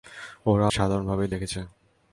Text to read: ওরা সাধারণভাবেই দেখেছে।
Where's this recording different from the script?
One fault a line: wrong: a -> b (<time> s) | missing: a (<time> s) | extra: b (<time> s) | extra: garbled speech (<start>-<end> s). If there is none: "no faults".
no faults